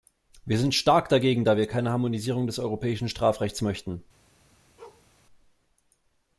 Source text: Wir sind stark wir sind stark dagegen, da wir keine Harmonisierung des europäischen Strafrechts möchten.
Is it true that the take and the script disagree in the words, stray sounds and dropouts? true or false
true